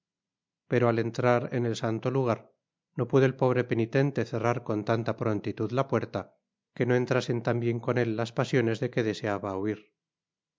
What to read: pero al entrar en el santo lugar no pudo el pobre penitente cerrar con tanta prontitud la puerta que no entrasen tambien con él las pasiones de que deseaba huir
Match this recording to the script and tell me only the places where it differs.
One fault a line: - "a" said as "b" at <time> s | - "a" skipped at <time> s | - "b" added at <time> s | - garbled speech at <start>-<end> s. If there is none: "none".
none